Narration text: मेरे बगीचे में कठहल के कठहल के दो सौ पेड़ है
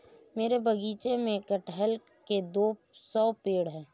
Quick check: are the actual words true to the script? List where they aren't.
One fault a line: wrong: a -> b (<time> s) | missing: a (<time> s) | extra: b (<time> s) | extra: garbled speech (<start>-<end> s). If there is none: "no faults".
missing: कठहल के (2.4 s)